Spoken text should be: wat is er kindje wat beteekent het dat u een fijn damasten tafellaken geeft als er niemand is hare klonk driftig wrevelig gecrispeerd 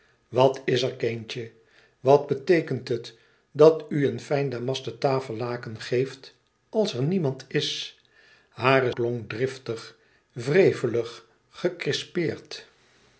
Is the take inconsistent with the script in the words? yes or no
no